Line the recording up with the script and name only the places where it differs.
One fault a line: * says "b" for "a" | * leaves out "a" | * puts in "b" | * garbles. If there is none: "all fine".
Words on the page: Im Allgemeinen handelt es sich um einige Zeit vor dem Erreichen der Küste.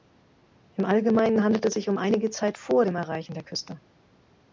all fine